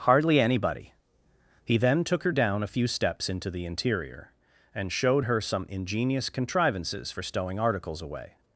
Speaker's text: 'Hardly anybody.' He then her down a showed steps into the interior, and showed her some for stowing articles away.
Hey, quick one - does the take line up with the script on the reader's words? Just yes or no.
no